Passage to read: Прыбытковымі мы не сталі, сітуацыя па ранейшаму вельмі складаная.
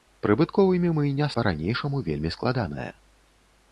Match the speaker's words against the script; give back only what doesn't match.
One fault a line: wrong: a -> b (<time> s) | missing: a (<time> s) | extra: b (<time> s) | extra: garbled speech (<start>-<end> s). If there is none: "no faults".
missing: сталі сітуацыя (1.3 s)